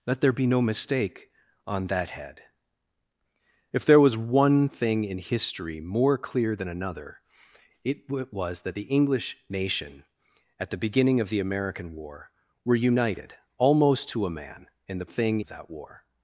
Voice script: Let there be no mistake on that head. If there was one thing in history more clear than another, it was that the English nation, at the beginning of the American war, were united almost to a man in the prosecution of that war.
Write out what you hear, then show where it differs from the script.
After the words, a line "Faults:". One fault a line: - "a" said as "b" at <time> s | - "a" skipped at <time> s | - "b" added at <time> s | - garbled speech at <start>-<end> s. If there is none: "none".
Let there be no mistake on that head. If there was one thing in history more clear than another, it was that the English nation, at the beginning of the American war, were united almost to a man in the thing of that war.
Faults:
- "prosecution" said as "thing" at 15.0 s